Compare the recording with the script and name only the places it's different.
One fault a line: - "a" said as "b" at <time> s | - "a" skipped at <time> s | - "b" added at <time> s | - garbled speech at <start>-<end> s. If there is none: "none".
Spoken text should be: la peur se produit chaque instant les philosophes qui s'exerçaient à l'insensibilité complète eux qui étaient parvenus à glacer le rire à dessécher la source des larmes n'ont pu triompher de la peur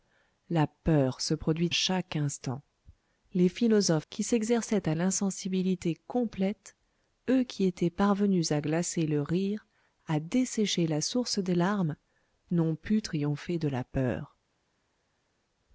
none